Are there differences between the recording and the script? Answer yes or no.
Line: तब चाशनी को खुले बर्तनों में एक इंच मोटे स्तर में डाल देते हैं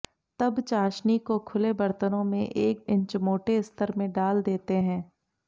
no